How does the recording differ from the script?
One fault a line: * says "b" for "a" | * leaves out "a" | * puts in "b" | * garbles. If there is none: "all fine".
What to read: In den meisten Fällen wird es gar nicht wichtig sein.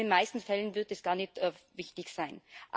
all fine